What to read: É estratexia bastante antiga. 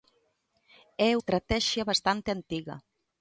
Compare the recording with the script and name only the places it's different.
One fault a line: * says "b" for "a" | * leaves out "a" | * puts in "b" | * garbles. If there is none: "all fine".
all fine